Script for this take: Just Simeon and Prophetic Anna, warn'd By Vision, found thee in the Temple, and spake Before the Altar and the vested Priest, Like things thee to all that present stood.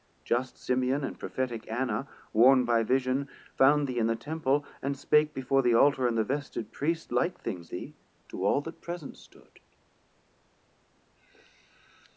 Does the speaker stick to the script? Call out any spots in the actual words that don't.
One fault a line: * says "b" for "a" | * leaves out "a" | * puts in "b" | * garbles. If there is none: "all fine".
all fine